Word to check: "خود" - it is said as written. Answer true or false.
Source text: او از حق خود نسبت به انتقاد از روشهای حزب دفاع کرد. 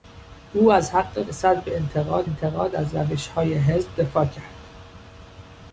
false